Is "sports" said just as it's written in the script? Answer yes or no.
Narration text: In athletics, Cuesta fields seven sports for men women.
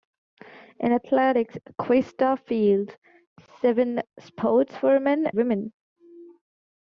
yes